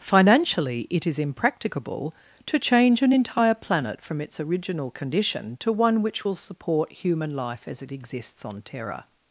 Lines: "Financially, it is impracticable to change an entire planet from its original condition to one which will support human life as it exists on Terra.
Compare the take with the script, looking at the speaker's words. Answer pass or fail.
pass